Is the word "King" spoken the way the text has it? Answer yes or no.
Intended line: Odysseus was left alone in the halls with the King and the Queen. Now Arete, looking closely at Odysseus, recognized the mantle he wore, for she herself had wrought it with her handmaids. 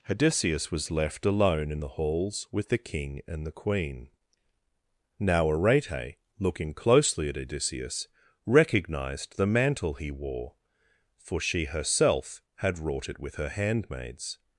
yes